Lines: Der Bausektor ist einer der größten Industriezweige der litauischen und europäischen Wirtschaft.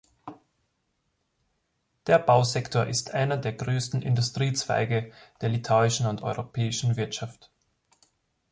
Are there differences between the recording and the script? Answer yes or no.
no